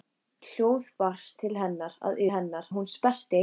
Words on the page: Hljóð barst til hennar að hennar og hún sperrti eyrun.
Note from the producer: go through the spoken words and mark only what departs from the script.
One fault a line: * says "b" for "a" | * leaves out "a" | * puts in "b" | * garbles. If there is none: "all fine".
all fine